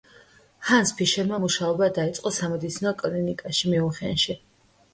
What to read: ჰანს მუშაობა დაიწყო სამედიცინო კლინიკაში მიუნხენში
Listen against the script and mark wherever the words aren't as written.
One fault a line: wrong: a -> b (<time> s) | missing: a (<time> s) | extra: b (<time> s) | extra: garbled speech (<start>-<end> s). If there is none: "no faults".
extra: ფიშერმა (1.0 s)